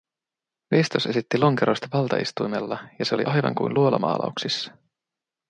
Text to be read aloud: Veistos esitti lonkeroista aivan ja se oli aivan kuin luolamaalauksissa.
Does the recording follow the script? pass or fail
fail